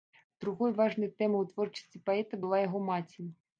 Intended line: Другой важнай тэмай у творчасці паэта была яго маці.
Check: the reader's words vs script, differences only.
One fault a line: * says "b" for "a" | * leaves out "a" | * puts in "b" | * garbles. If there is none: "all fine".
all fine